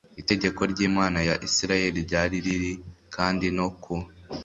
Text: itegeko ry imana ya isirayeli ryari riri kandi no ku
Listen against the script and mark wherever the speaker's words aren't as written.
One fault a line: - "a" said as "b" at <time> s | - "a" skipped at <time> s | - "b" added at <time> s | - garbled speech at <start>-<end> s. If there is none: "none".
none